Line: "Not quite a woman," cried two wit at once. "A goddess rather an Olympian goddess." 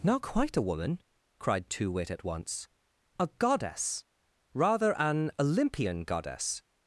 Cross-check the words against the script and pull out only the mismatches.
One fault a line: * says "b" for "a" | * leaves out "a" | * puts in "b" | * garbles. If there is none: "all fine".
all fine